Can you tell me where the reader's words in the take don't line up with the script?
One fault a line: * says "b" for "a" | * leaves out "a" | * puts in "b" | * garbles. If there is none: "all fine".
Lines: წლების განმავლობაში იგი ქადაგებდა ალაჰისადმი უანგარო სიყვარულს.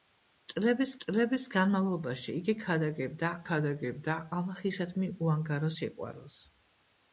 * puts in "წლების"
* puts in "ქადაგებდა"